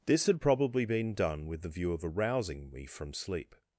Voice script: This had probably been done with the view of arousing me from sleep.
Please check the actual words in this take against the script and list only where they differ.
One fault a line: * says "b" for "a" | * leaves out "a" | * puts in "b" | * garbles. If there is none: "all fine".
all fine